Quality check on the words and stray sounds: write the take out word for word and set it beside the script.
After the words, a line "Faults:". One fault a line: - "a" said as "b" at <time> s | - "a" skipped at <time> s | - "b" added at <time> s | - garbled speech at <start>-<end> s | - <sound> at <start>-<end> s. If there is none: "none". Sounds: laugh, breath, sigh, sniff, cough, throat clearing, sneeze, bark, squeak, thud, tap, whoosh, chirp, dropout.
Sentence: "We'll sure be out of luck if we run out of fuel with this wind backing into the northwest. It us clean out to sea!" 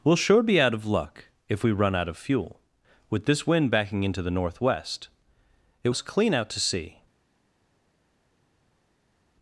"We'll sure be out of luck if we run out of fuel with this wind backing into the northwest. It us clean out to sea!"
Faults:
none